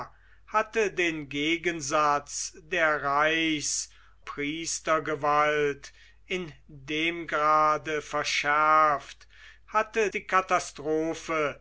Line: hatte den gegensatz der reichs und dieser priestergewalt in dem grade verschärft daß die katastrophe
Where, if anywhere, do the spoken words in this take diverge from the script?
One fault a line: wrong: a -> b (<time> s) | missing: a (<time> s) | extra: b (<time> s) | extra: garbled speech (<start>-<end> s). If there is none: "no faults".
missing: und dieser (3.9 s)
wrong: daß -> hatte (9.7 s)